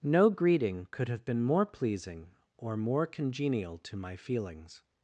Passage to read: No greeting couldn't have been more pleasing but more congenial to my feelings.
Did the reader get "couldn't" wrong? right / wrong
wrong